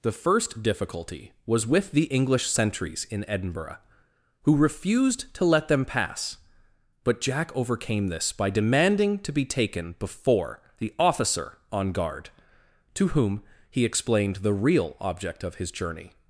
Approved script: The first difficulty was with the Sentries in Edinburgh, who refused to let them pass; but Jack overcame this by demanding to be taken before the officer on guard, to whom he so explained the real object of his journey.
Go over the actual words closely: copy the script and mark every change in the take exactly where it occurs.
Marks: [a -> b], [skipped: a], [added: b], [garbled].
The first difficulty was with the [added: English] Sentries in Edinburgh, who refused to let them pass; but Jack overcame this by demanding to be taken before the officer on guard, to whom he [skipped: so] explained the real object of his journey.